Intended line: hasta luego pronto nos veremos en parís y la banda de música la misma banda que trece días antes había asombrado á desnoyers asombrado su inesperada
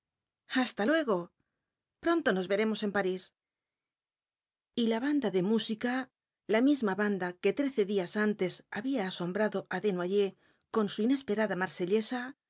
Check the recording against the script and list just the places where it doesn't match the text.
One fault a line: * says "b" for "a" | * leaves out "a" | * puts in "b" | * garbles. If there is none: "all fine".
* says "con" for "asombrado"